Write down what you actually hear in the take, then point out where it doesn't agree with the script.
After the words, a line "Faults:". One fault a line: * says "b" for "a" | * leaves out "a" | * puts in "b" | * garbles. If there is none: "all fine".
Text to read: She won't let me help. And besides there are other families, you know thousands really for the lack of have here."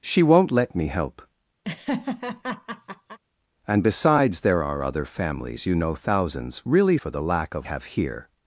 She won't let me help. And besides there are other families, you know thousands really for the lack of have here."
Faults:
all fine